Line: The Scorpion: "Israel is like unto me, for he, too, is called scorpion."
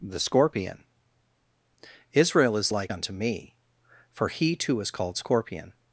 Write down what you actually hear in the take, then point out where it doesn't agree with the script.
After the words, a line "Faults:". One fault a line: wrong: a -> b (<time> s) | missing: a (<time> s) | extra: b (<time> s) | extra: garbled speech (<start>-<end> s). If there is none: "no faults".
The Scorpion: "Israel is like unto me, for he, too, is called scorpion."
Faults:
no faults